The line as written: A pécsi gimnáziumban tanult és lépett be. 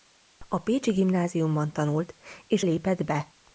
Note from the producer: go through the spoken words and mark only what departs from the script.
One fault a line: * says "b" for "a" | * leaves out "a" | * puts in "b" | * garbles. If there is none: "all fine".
all fine